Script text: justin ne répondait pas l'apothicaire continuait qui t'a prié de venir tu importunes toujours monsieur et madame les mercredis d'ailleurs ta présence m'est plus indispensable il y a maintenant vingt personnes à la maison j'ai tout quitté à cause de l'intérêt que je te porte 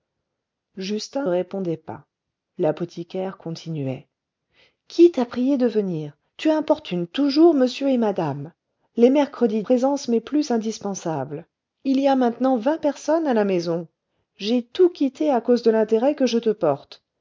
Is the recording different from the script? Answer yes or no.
yes